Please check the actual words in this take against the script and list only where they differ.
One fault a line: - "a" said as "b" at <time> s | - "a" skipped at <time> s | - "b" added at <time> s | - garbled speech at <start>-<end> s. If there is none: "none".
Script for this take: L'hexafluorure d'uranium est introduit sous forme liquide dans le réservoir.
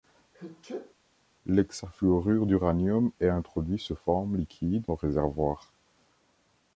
- "dans" skipped at 4.8 s